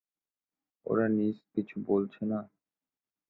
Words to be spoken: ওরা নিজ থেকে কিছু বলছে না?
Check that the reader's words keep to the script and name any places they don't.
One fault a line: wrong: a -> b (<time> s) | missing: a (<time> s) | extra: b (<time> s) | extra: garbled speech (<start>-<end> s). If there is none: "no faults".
missing: থেকে (1.4 s)